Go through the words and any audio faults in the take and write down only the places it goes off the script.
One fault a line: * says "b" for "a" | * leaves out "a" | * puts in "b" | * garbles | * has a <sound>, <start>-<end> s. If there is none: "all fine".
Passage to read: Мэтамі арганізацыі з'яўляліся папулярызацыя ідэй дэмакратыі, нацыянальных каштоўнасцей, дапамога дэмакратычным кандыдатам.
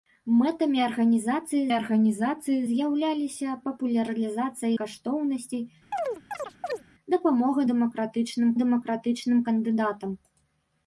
* puts in "арганізацыі"
* leaves out "ідэй дэмакратыі нацыянальных"
* has a chirp, 5.9-6.8 s
* puts in "дэмакратычным"